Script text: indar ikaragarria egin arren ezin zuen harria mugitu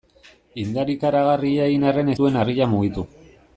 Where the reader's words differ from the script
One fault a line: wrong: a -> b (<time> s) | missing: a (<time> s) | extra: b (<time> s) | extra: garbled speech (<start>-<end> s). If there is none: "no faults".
missing: ezin (2.1 s)